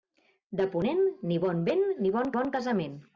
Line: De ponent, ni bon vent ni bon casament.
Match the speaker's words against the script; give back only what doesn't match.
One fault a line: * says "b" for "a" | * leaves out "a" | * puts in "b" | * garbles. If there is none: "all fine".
* puts in "bon"